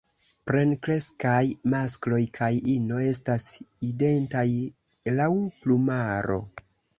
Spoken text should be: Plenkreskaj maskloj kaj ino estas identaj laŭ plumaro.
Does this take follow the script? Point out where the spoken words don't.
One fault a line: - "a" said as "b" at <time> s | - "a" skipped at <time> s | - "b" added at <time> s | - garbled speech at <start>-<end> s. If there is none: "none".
none